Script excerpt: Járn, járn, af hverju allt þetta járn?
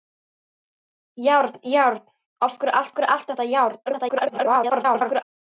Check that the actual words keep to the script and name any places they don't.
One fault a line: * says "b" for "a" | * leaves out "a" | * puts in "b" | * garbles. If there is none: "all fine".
* puts in "hverju allt"
* garbles